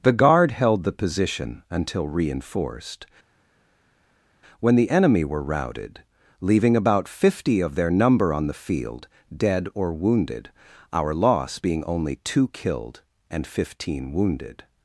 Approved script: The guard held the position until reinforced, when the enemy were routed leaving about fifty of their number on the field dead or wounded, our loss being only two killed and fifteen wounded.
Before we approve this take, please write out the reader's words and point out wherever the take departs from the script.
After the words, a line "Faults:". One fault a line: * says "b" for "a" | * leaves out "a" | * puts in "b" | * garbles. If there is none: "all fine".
The guard held the position until reinforced, when the enemy were routed leaving about fifty of their number on the field dead or wounded, our loss being only two killed and fifteen wounded.
Faults:
all fine